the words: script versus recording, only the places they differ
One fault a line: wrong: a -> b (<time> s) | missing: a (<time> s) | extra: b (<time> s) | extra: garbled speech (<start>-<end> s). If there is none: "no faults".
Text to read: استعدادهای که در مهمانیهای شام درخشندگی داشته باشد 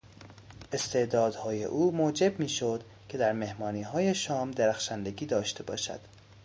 extra: او موجب میشد (1.6 s)